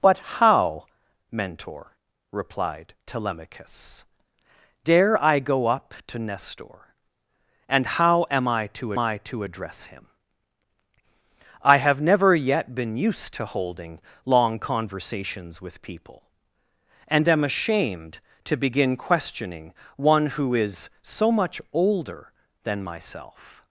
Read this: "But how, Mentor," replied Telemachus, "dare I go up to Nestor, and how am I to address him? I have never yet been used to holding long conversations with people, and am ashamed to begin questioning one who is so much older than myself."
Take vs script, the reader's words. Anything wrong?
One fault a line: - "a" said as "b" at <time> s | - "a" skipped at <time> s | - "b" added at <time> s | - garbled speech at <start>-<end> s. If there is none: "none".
- "I to" added at 9.0 s